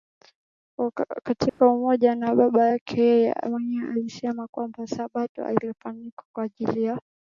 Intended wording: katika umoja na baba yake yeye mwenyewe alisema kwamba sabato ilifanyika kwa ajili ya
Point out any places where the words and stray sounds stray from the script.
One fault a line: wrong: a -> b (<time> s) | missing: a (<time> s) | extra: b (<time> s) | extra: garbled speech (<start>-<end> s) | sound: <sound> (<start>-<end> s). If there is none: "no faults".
sound: dropout (1.5-1.6 s)